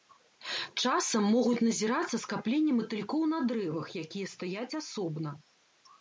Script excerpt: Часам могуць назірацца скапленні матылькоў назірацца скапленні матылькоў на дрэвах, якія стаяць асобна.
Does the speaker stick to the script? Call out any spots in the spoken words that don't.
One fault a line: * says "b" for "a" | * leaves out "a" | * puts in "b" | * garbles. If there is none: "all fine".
* leaves out "назірацца скапленні матылькоў"